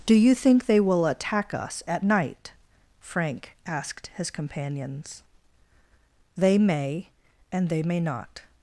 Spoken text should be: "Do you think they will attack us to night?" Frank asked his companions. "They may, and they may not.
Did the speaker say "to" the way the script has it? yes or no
no